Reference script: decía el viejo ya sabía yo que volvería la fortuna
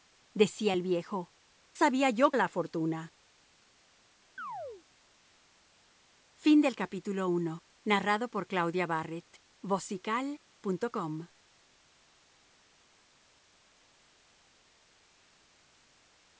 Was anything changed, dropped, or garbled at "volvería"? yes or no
yes